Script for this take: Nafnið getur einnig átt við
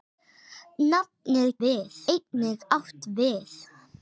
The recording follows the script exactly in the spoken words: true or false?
false